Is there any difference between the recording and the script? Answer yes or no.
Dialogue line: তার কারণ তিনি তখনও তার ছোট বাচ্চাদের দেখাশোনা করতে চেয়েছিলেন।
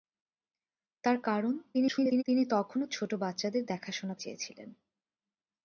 yes